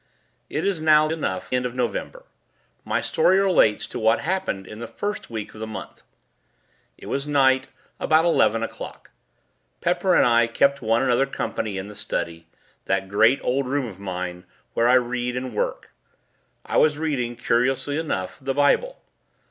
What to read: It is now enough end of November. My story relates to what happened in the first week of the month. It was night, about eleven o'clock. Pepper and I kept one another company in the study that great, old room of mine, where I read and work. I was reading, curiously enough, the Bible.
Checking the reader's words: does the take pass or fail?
pass